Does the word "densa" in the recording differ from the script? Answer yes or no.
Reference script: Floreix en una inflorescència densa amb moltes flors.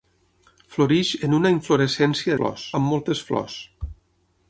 yes